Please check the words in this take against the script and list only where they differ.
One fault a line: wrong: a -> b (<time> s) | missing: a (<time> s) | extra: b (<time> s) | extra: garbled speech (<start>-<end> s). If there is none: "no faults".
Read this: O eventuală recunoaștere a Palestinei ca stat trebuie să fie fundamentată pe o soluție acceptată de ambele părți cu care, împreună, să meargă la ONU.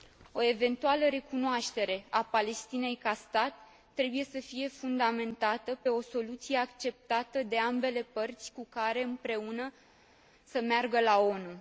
no faults